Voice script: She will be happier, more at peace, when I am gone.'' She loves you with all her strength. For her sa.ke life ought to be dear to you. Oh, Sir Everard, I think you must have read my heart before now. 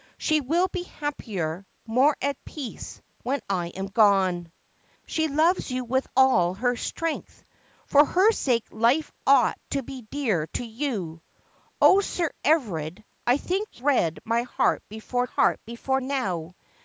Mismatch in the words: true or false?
true